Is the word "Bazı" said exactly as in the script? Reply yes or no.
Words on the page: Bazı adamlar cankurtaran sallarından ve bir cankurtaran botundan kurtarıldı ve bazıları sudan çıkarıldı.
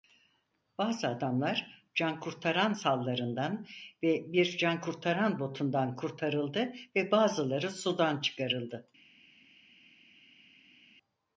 yes